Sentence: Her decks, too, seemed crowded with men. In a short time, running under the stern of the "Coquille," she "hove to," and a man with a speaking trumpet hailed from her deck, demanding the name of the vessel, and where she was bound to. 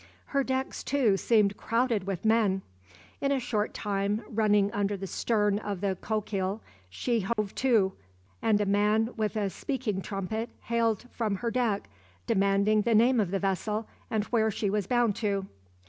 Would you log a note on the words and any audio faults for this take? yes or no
yes